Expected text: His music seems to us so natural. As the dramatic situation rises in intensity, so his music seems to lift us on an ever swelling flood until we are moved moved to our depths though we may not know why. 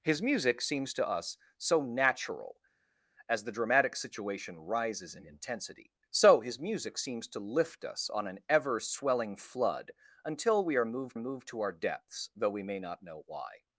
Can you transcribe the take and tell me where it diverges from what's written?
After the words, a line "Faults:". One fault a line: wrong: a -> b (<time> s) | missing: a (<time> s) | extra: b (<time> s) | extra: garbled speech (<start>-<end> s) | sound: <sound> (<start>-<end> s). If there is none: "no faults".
His music seems to us so natural. As the dramatic situation rises in intensity, so his music seems to lift us on an ever swelling flood until we are moved moved to our depths though we may not know why.
Faults:
no faults